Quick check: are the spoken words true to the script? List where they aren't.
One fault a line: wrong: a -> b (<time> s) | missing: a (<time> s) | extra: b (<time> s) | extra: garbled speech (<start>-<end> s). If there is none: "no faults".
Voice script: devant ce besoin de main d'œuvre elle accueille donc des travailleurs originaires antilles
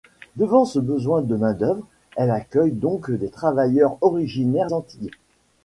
no faults